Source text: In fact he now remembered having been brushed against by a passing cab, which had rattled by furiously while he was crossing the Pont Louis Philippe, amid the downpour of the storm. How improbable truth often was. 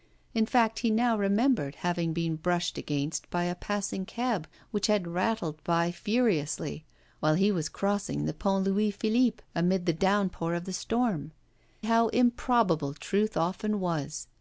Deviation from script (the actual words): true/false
false